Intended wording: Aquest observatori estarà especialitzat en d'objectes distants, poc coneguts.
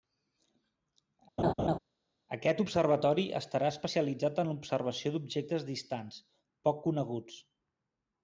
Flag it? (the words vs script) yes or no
yes